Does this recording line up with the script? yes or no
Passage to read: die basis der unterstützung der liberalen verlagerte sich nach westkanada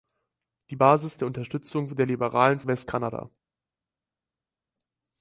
no